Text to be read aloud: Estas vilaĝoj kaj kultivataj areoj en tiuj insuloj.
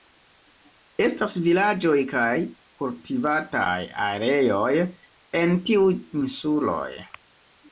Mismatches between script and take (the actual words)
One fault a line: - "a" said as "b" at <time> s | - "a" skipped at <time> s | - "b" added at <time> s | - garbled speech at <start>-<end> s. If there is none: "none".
none